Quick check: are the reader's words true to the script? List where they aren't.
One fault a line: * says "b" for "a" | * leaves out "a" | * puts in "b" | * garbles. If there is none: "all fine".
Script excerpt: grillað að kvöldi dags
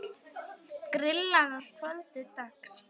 all fine